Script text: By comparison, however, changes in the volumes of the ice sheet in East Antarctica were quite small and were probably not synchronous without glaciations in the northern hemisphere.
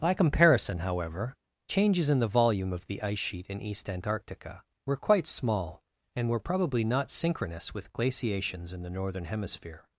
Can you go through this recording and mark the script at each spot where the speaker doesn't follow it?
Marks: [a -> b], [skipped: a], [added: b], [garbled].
By comparison, however, changes in the [volumes -> volume] of the ice sheet in East Antarctica were quite small and were probably not synchronous [without -> with] glaciations in the northern hemisphere.